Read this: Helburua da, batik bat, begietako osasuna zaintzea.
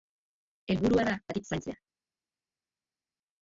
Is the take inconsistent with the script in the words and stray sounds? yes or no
yes